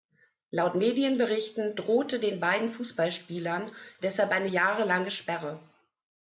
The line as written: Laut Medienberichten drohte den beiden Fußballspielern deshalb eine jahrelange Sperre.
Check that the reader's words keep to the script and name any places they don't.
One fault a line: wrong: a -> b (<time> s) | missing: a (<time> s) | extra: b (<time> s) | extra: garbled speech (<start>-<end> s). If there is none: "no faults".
no faults